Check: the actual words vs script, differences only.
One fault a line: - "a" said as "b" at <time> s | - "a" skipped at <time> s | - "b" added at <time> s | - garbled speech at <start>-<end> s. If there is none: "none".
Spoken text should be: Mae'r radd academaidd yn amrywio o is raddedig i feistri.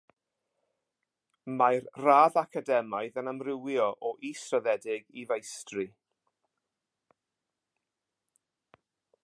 none